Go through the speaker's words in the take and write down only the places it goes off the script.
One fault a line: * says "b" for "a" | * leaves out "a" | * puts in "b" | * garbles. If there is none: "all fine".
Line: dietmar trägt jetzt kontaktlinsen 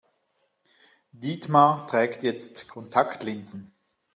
all fine